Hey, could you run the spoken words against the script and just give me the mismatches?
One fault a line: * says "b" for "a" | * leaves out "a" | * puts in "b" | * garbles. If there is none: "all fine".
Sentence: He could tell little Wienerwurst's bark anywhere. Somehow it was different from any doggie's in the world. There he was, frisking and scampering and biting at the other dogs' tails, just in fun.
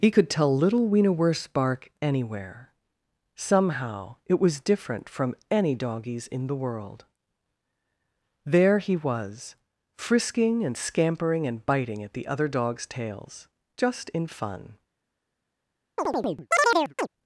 all fine